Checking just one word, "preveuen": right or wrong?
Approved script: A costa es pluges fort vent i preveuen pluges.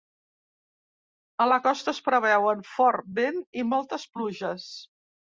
wrong